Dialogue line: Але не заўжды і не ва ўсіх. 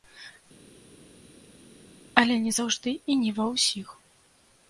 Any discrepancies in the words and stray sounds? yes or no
no